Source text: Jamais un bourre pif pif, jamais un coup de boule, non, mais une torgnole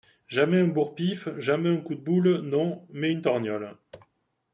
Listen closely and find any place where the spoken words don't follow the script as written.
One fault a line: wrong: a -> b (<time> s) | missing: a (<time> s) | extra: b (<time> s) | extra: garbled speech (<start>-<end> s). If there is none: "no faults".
missing: pif (1.3 s)